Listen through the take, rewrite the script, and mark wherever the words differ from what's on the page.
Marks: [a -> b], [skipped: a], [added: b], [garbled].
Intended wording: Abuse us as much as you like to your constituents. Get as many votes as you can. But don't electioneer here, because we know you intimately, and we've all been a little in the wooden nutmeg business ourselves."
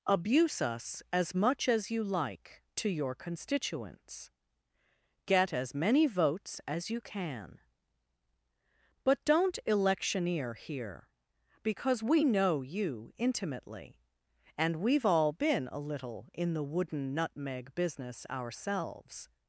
Abuse us as much as you like to your constituents. Get as many votes as you can. But don't electioneer here, because we know you intimately, and we've all been a little in the wooden nutmeg business ourselves."